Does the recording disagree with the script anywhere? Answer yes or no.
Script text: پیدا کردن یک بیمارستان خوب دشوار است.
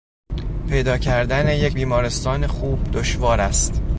no